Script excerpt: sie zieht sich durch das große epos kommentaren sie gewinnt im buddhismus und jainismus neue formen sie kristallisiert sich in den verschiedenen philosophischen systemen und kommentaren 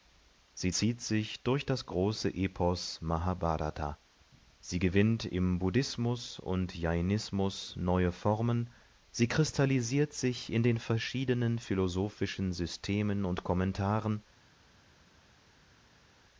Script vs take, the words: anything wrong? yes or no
yes